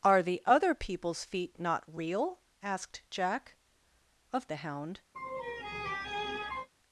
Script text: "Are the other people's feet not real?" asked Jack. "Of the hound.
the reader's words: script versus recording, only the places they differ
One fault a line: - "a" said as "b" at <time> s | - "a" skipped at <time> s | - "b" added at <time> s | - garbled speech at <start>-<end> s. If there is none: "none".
none